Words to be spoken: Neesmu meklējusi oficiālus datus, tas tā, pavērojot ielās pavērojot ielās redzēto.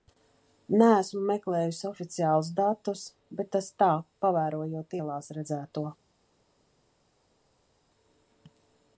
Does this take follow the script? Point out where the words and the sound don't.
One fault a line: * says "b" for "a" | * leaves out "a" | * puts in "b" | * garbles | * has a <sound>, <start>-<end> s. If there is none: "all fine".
* puts in "bet"
* leaves out "pavērojot ielās"